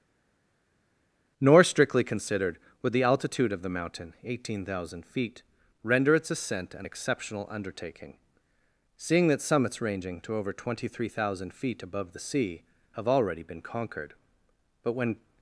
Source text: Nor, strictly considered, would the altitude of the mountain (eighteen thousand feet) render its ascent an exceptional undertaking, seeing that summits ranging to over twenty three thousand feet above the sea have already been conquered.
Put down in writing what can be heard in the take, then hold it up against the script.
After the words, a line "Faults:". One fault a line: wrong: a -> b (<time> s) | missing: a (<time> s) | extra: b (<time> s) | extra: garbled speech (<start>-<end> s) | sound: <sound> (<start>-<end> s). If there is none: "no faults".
Nor, strictly considered, would the altitude of the mountain (eighteen thousand feet) render its ascent an exceptional undertaking, seeing that summits ranging to over twenty three thousand feet above the sea have already been conquered. But, when
Faults:
extra: But when (14.8 s)